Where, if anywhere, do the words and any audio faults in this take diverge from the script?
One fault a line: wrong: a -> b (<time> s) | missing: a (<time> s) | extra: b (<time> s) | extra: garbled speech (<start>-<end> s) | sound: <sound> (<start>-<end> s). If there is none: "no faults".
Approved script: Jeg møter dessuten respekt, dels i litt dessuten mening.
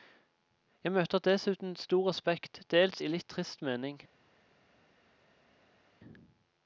extra: stor (1.8 s)
wrong: dessuten -> trist (3.3 s)